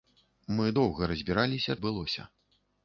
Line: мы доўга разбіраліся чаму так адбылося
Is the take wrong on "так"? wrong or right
wrong